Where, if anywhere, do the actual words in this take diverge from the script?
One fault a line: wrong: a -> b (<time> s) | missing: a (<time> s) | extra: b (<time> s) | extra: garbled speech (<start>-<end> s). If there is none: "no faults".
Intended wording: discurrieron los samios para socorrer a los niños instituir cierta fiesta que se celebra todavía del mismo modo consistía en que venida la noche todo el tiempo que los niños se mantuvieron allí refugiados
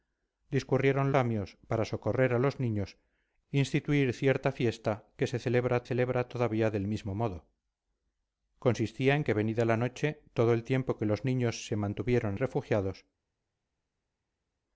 missing: los (1.1 s)
extra: celebra (5.8 s)
missing: allí (12.4 s)